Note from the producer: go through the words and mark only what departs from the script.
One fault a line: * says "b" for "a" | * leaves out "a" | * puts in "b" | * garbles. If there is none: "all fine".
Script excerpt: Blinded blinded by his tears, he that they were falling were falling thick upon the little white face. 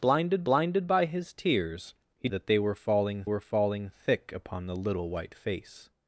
all fine